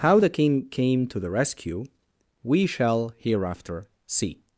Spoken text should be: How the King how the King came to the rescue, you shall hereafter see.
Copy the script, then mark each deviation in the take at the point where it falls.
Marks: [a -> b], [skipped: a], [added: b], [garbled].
How the King [skipped: how the King] came to the rescue, [you -> we] shall hereafter see.